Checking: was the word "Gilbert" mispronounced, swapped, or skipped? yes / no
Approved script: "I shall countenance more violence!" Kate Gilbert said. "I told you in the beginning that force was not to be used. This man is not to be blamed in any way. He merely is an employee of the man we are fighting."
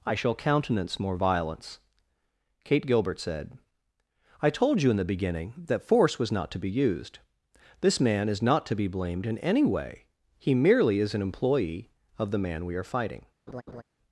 no